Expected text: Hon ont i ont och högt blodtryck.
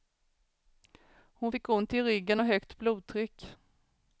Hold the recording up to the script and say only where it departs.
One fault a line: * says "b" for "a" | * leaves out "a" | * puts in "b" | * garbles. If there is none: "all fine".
* puts in "fick"
* says "ryggen" for "ont"